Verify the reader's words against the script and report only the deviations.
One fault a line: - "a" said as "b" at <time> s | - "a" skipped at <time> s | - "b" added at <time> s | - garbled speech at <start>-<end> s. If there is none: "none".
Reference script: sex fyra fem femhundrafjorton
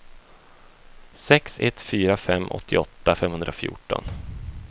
- "ett" added at 1.6 s
- "åttioåtta" added at 2.5 s